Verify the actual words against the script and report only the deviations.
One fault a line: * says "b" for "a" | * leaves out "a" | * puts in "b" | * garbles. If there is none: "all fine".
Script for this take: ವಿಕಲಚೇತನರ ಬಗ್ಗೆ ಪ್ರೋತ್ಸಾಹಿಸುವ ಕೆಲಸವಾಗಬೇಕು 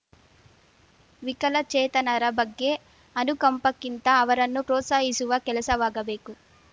* puts in "ಅನುಕಂಪಕ್ಕಿಂತ ಅವರನ್ನು"